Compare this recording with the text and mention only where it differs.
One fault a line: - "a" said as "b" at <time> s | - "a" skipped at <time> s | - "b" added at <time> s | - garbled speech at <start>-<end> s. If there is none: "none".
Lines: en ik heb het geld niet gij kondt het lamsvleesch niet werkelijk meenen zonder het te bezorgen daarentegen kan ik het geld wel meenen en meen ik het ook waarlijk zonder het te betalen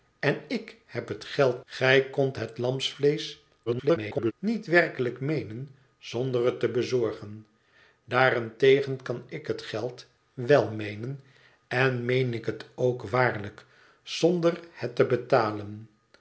- "niet" skipped at 1.6 s
- garbled speech at 3.7-4.3 s